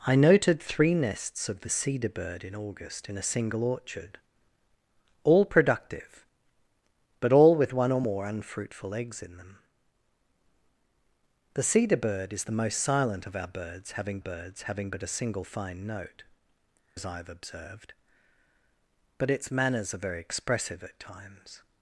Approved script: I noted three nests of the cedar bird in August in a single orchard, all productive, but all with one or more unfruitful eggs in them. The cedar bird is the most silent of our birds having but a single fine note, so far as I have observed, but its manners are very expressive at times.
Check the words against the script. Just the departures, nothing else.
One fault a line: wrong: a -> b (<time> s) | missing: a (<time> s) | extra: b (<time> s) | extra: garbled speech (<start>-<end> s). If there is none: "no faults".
extra: birds having (14.2 s)
missing: so far (16.2 s)